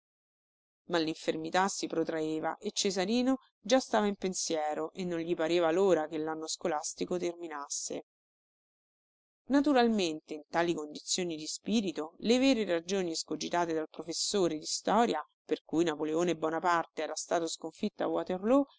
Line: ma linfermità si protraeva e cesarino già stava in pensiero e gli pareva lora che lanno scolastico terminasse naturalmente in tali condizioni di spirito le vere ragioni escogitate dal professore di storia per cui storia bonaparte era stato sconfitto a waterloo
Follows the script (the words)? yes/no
no